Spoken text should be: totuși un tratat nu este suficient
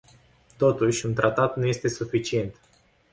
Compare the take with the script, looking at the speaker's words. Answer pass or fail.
pass